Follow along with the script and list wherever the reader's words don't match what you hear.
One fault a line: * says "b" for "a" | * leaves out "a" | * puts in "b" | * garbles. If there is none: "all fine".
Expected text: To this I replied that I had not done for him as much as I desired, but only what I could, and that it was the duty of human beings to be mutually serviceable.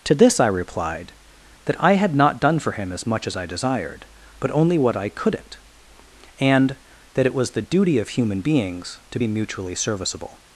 * says "couldn't" for "could"